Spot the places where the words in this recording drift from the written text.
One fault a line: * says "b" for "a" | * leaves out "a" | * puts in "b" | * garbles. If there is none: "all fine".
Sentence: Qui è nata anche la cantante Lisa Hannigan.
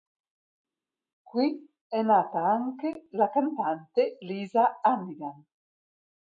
all fine